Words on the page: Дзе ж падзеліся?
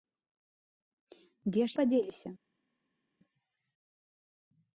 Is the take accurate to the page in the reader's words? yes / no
yes